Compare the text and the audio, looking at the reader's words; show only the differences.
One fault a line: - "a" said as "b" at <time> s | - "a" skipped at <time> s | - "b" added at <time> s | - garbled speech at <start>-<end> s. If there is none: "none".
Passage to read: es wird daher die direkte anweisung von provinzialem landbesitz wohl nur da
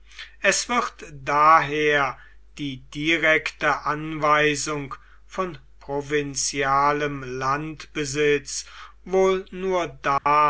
none